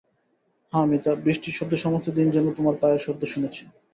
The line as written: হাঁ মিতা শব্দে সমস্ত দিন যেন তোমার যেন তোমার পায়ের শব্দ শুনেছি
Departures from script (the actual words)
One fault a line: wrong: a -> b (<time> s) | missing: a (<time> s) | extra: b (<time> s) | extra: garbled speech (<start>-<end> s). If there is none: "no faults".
extra: বৃষ্টির (1.2 s)
missing: যেন তোমার (2.8 s)